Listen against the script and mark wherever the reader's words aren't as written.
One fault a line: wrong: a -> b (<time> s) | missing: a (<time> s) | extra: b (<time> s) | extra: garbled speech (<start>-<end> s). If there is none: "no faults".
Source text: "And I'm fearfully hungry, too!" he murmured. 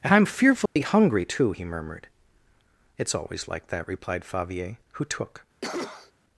extra: It's always like that replied Favier who took (3.0 s)